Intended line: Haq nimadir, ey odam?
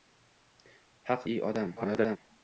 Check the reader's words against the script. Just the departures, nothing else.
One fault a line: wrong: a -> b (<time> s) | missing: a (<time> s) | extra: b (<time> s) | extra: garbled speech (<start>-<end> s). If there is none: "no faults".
missing: nimadir (1.3 s)
extra: garbled speech (1.8-2.2 s)